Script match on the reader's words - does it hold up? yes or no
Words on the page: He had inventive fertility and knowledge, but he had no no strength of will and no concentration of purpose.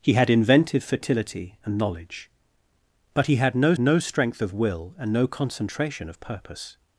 yes